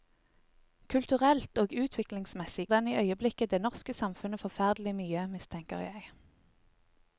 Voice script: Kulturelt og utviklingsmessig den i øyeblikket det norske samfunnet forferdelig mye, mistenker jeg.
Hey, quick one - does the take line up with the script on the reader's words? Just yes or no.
yes